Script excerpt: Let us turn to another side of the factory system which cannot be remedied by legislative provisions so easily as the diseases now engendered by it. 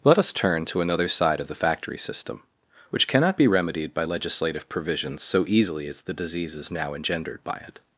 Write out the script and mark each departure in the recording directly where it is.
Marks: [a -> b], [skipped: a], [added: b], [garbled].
Let us turn to another side of the factory system which cannot be remedied by legislative provisions so easily as the diseases now engendered by it.